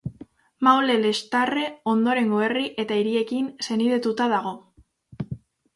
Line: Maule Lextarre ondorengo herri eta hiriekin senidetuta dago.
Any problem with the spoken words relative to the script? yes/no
no